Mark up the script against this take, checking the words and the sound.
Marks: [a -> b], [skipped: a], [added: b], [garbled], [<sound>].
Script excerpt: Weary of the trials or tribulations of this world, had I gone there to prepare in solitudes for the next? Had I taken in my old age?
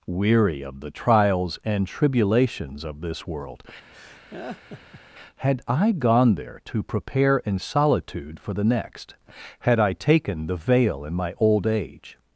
Weary of the trials [or -> and] tribulations of this world, [laugh] had I gone there to prepare in [solitudes -> solitude] for the next? Had I taken [added: the veil] in my old age?